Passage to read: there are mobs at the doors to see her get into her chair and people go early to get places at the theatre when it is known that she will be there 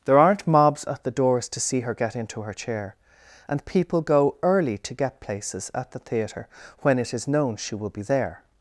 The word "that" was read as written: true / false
false